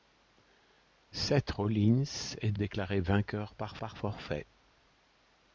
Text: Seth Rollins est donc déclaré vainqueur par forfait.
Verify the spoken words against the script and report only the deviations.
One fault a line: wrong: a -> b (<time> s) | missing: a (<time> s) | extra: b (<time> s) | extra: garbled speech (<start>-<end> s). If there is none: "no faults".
missing: donc (2.5 s)
extra: par (3.8 s)